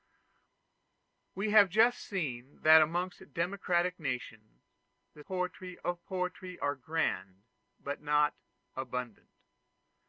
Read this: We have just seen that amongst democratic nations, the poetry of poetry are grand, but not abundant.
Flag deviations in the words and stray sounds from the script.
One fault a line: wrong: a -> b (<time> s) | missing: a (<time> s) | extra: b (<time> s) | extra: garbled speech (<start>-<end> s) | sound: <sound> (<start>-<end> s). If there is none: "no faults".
no faults